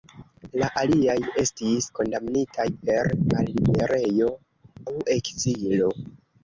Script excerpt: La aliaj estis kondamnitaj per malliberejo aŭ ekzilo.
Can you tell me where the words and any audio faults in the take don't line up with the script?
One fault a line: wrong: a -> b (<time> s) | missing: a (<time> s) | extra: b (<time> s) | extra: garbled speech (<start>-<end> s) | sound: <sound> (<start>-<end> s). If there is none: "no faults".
no faults